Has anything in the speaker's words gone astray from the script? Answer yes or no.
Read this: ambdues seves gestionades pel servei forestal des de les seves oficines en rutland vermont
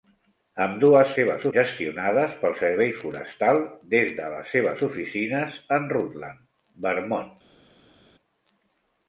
no